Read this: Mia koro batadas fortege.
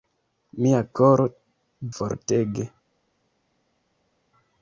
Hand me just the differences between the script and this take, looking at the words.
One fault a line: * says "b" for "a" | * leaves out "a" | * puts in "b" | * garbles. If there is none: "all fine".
* leaves out "batadas"